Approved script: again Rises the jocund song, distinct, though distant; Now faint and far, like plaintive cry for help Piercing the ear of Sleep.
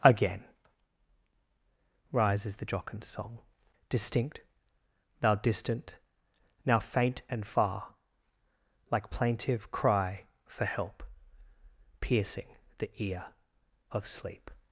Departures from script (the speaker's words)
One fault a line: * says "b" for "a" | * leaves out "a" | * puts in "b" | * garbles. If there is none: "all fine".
* says "thou" for "though"